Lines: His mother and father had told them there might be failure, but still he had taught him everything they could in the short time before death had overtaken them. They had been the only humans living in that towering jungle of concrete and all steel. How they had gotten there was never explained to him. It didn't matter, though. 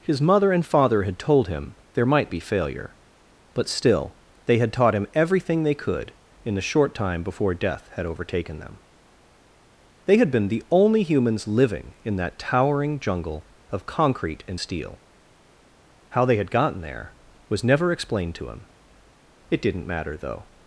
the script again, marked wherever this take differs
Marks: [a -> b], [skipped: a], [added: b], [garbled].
His mother and father had told [them -> him] there might be failure, but still [he -> they] had taught him everything they could in the short time before death had overtaken them. They had been the only humans living in that towering jungle of concrete and [skipped: all] steel. How they had gotten there was never explained to him. It didn't matter, though.